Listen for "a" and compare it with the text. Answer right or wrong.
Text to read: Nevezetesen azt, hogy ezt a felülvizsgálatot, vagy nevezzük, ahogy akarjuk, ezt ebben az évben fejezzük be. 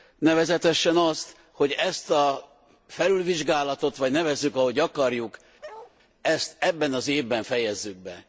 right